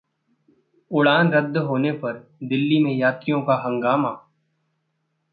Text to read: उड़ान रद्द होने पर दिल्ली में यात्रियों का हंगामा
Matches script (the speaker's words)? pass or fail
pass